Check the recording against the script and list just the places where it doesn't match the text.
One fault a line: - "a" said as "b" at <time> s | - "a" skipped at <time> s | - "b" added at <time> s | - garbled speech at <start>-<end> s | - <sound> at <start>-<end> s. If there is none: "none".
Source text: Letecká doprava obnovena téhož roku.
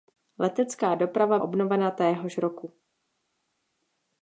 none